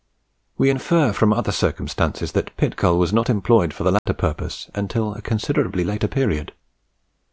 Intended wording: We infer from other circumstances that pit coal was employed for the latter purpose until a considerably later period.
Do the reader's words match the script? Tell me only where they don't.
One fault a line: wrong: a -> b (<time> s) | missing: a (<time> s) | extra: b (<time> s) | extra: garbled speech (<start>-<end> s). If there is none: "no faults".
extra: not (3.1 s)